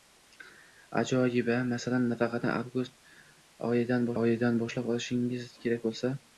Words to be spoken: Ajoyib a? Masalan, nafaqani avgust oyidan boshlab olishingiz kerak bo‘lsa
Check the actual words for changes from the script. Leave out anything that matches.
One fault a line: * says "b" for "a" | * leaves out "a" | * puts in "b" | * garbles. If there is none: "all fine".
* puts in "oyidan"